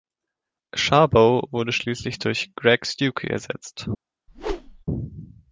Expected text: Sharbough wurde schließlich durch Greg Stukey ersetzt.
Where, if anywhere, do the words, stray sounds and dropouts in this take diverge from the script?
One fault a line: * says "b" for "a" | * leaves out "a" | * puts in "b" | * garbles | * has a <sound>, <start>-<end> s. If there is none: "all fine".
* has a whoosh, 4.3-4.8 s